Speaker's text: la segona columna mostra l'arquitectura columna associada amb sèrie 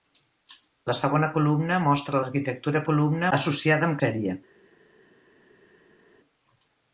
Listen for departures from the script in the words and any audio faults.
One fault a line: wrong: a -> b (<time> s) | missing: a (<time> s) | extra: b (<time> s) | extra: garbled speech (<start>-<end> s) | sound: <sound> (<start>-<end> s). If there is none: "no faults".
no faults